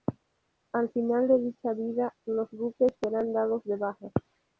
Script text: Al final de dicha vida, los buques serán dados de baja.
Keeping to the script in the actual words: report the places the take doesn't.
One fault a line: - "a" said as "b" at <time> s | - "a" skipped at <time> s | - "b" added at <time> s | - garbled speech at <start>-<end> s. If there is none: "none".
none